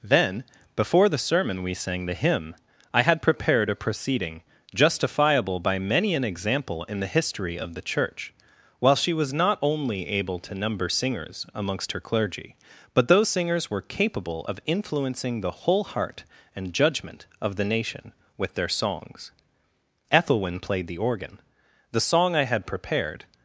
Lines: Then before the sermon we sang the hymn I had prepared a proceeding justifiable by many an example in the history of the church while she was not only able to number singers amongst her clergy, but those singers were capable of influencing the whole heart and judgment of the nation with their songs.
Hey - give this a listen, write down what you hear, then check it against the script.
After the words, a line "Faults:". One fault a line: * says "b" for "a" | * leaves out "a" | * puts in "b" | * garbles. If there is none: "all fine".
Then before the sermon we sang the hymn I had prepared a proceeding justifiable by many an example in the history of the church while she was not only able to number singers amongst her clergy, but those singers were capable of influencing the whole heart and judgment of the nation with their songs. Ethelwyn played the organ. The song I had prepared
Faults:
* puts in "Ethelwyn played the organ The song I had prepared"